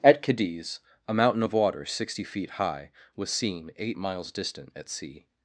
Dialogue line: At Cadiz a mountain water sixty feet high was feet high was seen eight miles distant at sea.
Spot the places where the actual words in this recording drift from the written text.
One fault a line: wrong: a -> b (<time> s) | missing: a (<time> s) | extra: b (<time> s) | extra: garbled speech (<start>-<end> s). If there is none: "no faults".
extra: of (1.4 s)
missing: feet high was (3.3 s)